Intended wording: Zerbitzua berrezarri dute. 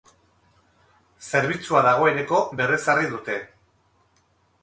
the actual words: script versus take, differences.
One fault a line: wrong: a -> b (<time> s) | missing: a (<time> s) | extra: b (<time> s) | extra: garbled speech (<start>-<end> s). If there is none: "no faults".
extra: dagoeneko (1.9 s)